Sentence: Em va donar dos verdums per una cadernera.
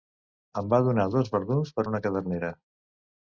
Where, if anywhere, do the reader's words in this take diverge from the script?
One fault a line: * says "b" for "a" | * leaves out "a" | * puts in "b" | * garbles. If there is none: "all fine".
all fine